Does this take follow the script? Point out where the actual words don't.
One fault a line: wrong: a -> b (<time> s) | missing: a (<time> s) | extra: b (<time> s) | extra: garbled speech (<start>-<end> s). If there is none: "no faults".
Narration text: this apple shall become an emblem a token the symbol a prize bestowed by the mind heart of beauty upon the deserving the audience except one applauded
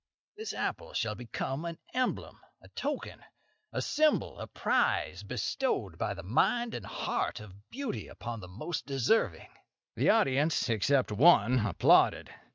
wrong: the -> a (3.7 s)
extra: and (6.7 s)
extra: most (8.5 s)